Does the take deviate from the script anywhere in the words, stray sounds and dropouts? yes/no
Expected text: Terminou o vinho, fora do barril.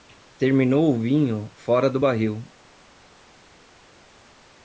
no